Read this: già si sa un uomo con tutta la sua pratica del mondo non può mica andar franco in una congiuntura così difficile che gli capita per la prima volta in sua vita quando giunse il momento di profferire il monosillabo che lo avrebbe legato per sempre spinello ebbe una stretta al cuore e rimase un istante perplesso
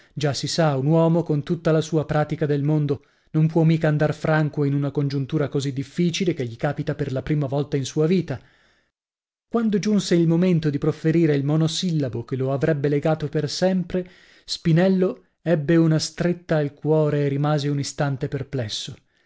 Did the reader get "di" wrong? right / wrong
right